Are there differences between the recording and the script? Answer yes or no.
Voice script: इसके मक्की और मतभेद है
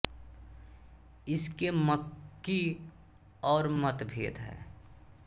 no